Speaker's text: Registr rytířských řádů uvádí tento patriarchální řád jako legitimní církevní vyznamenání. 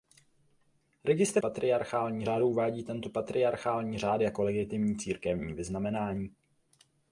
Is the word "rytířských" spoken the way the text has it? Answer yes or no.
no